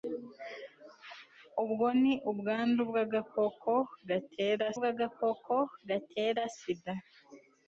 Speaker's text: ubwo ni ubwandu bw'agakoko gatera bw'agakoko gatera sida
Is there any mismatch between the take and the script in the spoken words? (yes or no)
no